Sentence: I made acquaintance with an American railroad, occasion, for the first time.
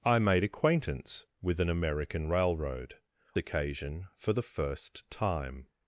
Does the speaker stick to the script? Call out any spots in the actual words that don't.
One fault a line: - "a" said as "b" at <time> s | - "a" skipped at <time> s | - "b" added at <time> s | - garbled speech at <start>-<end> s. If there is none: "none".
none